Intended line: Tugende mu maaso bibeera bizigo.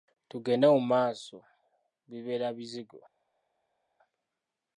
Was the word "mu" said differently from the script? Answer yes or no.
no